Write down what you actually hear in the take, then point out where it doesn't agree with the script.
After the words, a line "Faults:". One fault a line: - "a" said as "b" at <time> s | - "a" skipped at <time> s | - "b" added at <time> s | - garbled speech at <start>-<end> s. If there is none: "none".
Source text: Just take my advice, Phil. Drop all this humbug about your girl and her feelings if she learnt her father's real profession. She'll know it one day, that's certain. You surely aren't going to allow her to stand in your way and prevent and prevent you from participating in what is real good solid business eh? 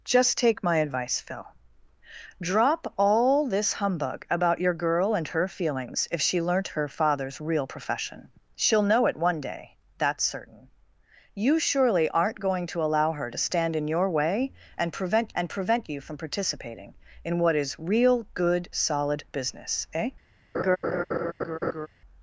Just take my advice, Phil. Drop all this humbug about your girl and her feelings if she learnt her father's real profession. She'll know it one day, that's certain. You surely aren't going to allow her to stand in your way and prevent and prevent you from participating in what is real good solid business eh?
Faults:
none